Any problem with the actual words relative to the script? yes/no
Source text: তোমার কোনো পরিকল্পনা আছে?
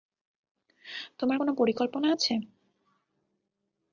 no